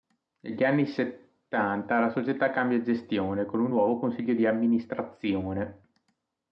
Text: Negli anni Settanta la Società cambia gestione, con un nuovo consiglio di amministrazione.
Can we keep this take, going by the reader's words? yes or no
yes